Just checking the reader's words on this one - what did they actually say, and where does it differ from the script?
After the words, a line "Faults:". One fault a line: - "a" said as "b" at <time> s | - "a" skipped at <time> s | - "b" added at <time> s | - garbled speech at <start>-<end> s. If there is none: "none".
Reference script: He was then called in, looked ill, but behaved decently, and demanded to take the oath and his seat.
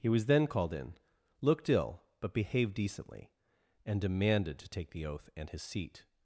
He was then called in, looked ill, but behaved decently, and demanded to take the oath and his seat.
Faults:
none